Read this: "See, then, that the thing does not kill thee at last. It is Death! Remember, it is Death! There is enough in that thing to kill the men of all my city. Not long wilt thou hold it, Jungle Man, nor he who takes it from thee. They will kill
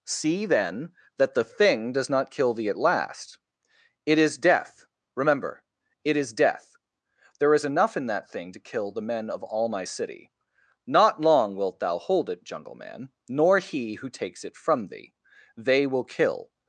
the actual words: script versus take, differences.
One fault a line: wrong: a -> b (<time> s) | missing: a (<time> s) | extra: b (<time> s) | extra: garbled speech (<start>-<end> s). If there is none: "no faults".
no faults